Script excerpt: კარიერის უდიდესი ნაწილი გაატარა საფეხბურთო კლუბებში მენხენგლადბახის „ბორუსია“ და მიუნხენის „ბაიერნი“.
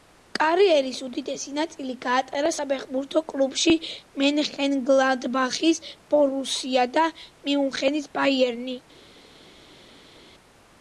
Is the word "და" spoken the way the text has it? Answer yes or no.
yes